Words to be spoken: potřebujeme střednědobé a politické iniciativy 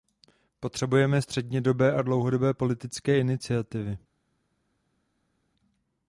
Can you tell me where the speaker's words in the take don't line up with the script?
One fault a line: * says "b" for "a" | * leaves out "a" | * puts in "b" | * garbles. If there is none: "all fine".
* puts in "dlouhodobé"